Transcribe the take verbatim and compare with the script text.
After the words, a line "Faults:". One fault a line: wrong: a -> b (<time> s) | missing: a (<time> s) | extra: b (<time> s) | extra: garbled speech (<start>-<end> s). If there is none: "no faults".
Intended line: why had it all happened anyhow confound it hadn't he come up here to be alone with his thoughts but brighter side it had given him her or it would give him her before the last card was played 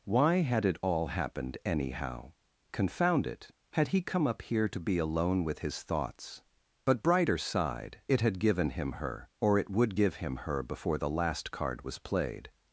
why had it all happened anyhow confound it had he come up here to be alone with his thoughts but brighter side it had given him her or it would give him her before the last card was played
Faults:
wrong: hadn't -> had (3.7 s)